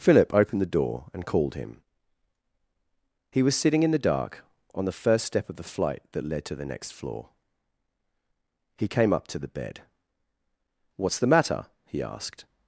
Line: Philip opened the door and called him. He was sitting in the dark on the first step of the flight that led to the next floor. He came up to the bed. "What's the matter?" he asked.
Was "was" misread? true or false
false